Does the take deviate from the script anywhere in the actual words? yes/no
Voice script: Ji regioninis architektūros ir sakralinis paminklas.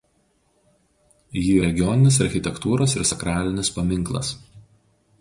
no